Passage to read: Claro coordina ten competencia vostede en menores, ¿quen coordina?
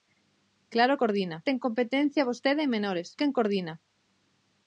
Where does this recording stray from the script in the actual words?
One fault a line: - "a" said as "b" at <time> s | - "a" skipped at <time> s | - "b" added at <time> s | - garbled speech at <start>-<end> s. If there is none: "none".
none